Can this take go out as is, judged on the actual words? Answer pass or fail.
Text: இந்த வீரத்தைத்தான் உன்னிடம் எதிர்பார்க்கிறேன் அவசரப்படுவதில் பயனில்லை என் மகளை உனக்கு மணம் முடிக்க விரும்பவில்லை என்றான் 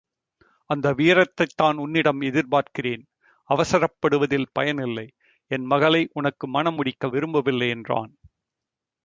fail